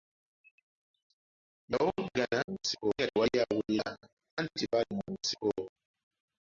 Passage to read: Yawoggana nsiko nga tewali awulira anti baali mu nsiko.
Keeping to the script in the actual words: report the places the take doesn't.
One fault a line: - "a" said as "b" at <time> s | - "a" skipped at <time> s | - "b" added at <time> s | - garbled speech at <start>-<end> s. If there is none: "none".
none